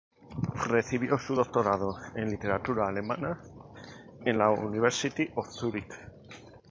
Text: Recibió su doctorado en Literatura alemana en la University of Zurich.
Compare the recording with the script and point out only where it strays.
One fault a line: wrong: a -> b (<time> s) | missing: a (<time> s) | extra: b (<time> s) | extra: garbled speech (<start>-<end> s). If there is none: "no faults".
no faults